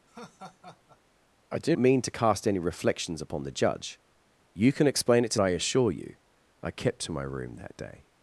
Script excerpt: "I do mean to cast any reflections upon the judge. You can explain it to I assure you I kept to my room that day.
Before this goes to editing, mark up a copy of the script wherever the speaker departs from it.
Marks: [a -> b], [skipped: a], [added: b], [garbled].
"I do mean to cast any reflections upon the judge. You can explain it to I assure you I kept to my room that day.